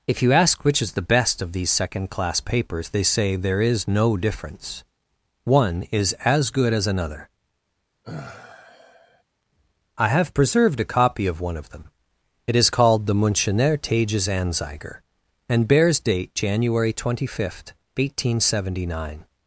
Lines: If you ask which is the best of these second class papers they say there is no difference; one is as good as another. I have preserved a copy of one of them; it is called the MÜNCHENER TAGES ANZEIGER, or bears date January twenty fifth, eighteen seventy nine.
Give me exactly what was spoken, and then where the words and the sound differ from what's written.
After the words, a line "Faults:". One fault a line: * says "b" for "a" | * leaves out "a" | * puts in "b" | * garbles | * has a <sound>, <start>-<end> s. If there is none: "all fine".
If you ask which is the best of these second class papers they say there is no difference; one is as good as another. I have preserved a copy of one of them; it is called the MÜNCHENER TAGES ANZEIGER, and bears date January twenty fifth, eighteen seventy nine.
Faults:
* has a sigh, 8.0-9.2 s
* says "and" for "or"